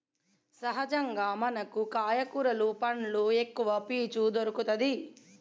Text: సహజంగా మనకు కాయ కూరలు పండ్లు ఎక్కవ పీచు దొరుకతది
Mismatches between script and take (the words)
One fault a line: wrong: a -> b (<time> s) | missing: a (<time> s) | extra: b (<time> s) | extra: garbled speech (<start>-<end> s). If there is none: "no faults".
no faults